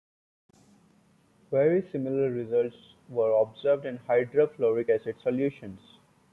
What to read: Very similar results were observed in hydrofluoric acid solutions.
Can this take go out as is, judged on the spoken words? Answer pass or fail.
pass